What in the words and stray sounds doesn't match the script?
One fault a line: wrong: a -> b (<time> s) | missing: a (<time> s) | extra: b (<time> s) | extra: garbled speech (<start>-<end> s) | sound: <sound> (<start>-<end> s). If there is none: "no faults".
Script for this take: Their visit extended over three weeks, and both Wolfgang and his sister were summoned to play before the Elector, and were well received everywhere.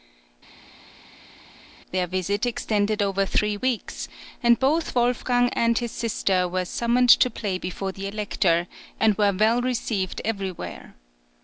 no faults